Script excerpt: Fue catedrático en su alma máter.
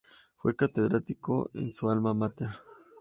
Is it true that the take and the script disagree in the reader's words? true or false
false